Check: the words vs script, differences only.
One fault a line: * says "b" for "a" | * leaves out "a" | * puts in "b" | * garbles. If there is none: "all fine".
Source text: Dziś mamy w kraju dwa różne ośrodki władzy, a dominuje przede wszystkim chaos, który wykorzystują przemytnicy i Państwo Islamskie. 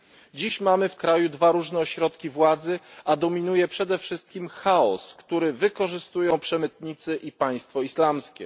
all fine